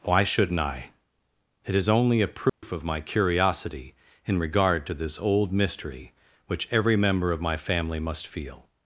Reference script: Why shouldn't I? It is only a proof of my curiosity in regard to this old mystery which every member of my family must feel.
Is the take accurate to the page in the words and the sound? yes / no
no